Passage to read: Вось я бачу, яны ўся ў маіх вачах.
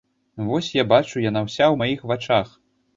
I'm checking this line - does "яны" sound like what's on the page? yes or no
no